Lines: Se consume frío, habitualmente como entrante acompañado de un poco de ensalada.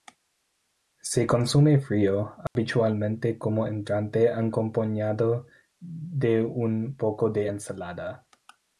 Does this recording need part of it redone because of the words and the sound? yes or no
yes